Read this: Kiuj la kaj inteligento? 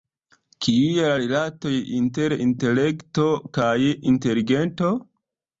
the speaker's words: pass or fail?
fail